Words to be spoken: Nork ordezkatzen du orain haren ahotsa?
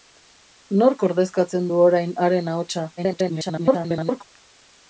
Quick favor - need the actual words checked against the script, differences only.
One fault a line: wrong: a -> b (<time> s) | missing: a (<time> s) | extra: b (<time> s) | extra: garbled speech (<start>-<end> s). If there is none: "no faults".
extra: garbled speech (3.0-4.2 s)